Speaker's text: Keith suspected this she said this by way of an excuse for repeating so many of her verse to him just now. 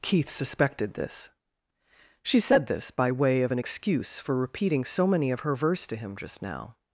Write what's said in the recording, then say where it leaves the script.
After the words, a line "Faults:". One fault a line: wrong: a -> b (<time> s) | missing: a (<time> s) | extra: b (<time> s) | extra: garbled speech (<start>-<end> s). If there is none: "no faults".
Keith suspected this she said this by way of an excuse for repeating so many of her verse to him just now.
Faults:
no faults